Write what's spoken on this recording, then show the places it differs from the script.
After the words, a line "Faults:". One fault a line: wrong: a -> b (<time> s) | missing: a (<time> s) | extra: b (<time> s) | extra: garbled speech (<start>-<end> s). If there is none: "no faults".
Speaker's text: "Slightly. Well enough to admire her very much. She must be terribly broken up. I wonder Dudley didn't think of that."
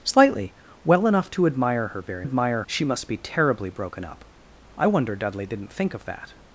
"Slightly. Well enough to admire her very admire. She must be terribly broken up. I wonder Dudley didn't think of that."
Faults:
wrong: much -> admire (2.2 s)